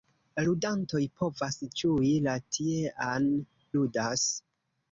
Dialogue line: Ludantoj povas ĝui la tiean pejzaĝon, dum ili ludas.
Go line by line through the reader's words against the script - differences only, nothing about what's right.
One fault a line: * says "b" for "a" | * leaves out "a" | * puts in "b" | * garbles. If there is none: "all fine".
* leaves out "pejzaĝon dum ili"